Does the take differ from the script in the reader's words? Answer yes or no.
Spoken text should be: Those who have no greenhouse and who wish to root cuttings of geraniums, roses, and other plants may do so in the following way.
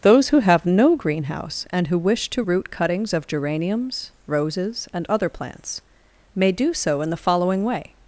no